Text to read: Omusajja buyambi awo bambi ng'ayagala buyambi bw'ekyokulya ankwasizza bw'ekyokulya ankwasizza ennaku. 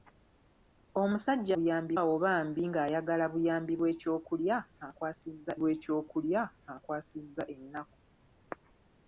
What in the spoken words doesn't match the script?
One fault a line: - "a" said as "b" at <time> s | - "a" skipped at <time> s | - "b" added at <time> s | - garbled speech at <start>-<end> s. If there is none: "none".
none